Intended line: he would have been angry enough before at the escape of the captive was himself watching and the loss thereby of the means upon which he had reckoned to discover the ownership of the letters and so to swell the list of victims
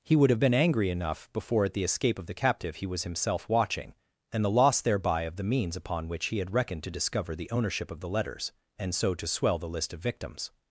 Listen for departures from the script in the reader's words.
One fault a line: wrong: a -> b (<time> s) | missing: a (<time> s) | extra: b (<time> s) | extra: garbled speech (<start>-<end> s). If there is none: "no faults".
extra: he (2.8 s)